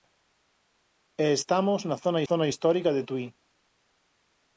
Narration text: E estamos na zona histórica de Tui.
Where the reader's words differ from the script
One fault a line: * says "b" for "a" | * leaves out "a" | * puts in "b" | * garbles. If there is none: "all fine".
* puts in "zona"